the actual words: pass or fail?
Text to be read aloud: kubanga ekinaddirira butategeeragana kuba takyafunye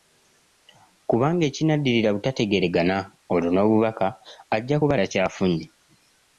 fail